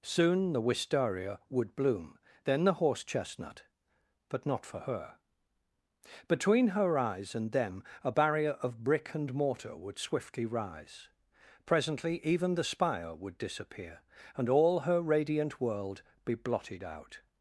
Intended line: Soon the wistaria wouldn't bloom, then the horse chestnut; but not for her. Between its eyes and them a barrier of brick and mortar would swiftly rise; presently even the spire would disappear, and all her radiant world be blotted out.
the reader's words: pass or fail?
fail